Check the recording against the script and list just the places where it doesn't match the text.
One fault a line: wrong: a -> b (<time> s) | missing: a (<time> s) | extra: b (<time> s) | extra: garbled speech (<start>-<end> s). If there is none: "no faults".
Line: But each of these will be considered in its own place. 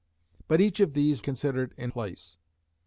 missing: will be (1.2 s)
missing: its own (1.9 s)